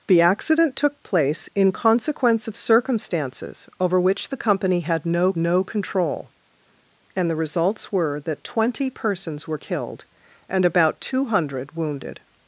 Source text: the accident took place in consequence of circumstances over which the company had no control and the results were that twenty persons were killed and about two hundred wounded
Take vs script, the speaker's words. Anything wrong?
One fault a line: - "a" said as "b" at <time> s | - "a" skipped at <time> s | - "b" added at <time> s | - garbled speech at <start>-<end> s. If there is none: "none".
- "no" added at 5.4 s